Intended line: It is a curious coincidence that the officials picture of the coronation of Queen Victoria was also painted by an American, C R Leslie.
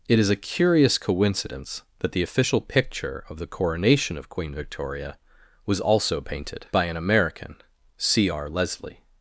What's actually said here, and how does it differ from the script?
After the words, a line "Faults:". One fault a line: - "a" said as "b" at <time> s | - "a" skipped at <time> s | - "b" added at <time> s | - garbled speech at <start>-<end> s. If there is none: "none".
It is a curious coincidence that the official picture of the coronation of Queen Victoria was also painted by an American, C R Leslie.
Faults:
- "officials" said as "official" at 2.2 s